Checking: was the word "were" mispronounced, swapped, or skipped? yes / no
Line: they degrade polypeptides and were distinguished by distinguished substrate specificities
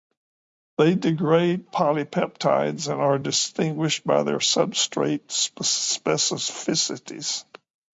yes